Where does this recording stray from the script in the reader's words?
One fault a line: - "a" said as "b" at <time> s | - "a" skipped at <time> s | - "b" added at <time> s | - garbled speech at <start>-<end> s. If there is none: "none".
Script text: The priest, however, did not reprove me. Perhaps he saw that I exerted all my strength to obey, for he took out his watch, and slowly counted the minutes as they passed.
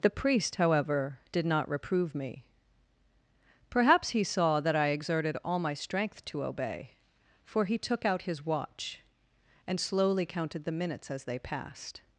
none